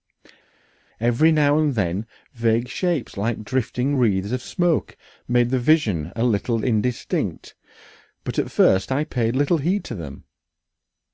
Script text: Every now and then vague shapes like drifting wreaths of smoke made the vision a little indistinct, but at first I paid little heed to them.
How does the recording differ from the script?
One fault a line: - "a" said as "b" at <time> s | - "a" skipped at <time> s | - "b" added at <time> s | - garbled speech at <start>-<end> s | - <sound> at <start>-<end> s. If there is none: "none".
none